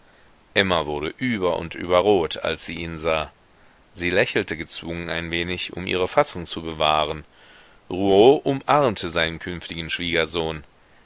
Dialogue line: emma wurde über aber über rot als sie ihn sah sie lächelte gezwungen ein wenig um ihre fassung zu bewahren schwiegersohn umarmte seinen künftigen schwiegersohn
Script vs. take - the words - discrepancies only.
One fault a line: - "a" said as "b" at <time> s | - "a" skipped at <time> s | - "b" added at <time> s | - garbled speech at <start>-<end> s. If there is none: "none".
- "aber" said as "und" at 1.6 s
- "schwiegersohn" said as "rouault" at 7.9 s